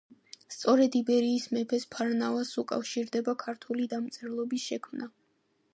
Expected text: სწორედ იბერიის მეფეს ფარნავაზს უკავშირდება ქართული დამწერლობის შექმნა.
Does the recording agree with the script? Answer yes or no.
yes